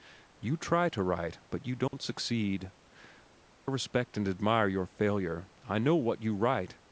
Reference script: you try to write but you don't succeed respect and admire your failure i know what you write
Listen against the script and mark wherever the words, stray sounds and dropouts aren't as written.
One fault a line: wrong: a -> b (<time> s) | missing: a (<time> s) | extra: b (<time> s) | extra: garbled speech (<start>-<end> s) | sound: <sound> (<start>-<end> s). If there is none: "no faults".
sound: dropout (1.9-1.9 s)